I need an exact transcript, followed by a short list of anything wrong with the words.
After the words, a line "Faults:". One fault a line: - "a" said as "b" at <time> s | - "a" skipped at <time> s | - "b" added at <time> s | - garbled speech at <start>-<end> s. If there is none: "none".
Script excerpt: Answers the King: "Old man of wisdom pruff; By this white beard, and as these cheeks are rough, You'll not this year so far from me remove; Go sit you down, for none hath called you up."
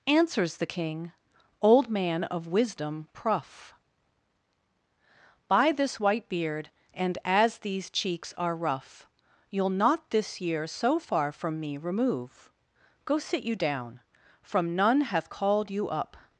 Answers the King: "Old man of wisdom pruff; By this white beard, and as these cheeks are rough, You'll not this year so far from me remove; Go sit you down, from none hath called you up."
Faults:
- "for" said as "from" at 14.4 s